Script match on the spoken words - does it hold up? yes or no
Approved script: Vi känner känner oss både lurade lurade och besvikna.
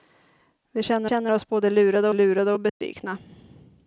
yes